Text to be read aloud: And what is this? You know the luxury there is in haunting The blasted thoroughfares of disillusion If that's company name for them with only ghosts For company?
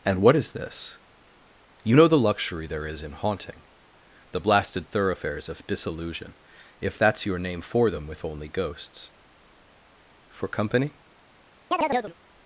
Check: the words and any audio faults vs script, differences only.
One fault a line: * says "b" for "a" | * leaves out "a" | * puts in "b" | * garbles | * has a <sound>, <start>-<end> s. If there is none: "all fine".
* says "your" for "company"
* has a chirp, 11.7-12.1 s